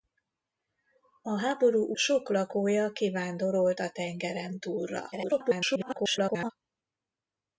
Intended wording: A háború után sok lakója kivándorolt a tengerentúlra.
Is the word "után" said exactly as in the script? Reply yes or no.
no